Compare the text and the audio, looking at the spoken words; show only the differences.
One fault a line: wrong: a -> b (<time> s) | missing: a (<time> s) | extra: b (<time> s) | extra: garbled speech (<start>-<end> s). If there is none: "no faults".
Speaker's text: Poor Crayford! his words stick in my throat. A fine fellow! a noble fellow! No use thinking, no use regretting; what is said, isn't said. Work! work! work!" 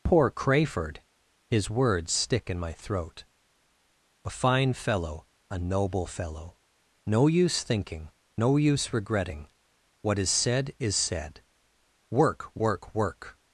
wrong: isn't -> is (10.8 s)